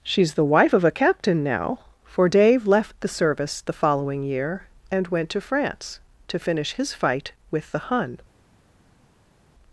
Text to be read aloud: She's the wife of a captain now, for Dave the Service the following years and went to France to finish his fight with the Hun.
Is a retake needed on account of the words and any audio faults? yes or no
yes